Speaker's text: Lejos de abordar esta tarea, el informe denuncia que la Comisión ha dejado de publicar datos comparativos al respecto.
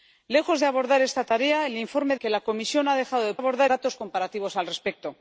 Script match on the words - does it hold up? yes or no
no